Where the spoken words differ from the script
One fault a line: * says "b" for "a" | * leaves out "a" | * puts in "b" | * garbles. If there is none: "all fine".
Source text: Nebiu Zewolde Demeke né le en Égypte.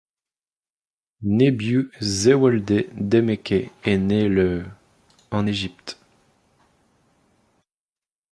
* puts in "est"